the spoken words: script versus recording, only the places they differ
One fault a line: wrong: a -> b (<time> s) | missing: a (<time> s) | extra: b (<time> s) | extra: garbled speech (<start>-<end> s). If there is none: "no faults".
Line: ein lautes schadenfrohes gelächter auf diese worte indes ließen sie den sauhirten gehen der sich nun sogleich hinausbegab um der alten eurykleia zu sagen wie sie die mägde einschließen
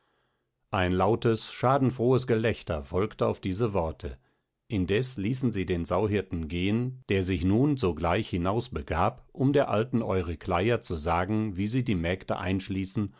extra: folgte (2.9 s)